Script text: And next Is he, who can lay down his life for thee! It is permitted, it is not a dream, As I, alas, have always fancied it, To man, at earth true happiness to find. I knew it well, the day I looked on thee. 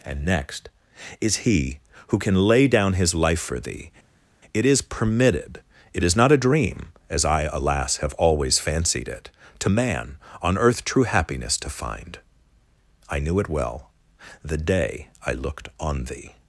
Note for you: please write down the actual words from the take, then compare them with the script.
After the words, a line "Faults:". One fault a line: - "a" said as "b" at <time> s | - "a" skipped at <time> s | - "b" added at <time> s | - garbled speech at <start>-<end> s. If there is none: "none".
And next Is he, who can lay down his life for thee! It is permitted, it is not a dream, As I, alas, have always fancied it, To man, on earth true happiness to find. I knew it well, the day I looked on thee.
Faults:
- "at" said as "on" at 10.4 s